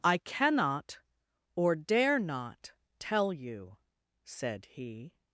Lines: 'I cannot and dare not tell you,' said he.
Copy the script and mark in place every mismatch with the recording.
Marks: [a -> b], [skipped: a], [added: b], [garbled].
'I cannot [and -> or] dare not tell you,' said he.